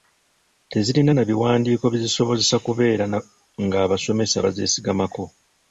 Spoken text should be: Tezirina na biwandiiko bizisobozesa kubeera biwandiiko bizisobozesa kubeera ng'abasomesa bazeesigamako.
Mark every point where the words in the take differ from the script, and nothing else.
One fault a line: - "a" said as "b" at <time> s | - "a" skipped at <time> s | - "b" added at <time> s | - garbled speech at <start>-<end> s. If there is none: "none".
- "biwandiiko bizisobozesa kubeera" skipped at 3.0 s